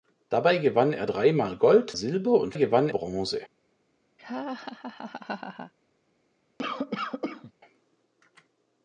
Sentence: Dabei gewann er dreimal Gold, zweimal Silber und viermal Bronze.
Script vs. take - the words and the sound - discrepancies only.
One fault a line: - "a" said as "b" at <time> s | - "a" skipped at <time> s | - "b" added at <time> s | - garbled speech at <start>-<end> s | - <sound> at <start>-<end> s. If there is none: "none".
- "zweimal" skipped at 1.9 s
- "viermal" said as "gewann" at 2.5 s
- laugh at 4.2-5.7 s
- cough at 6.6-7.5 s